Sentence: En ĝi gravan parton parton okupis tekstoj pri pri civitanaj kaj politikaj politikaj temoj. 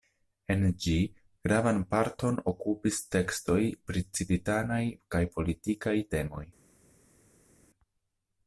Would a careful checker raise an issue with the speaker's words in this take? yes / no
yes